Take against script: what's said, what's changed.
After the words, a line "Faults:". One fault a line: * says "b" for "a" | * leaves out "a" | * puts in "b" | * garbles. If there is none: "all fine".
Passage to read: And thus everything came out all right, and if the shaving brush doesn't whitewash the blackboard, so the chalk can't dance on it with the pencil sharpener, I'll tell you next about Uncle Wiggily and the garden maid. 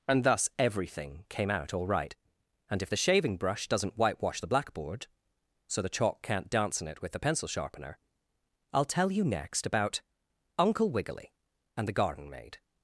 And thus everything came out all right, and if the shaving brush doesn't whitewash the blackboard, so the chalk can't dance in it with the pencil sharpener, I'll tell you next about Uncle Wiggily and the garden maid.
Faults:
* says "in" for "on"